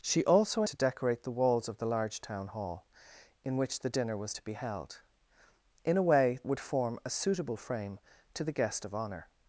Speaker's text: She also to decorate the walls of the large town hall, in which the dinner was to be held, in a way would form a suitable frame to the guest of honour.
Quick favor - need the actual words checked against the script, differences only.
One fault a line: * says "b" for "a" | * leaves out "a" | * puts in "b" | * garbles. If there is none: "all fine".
all fine